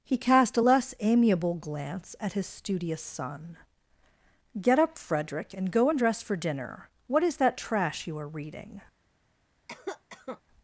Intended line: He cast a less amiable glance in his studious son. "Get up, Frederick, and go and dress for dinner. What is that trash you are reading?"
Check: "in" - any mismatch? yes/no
yes